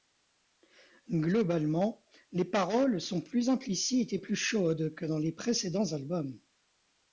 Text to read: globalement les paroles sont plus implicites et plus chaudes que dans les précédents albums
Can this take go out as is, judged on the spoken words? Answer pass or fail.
pass